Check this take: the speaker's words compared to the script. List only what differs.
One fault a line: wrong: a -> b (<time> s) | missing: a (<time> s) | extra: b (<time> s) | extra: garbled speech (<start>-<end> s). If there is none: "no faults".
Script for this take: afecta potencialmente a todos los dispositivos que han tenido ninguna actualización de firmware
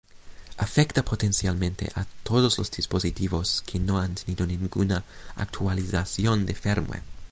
extra: no (3.8 s)